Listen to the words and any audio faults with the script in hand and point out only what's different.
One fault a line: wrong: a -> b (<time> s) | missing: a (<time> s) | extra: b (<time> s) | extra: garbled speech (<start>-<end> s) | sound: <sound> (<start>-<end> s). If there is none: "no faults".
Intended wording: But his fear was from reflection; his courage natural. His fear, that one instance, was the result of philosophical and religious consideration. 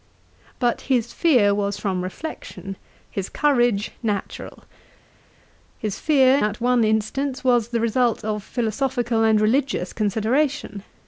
no faults